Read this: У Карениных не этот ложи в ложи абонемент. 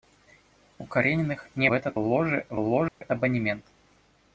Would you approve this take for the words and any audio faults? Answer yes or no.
no